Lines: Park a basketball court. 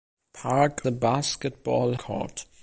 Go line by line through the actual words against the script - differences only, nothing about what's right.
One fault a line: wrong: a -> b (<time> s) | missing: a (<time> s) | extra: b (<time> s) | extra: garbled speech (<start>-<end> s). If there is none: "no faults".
no faults